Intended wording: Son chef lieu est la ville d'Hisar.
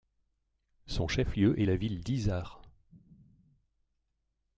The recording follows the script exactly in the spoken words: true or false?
true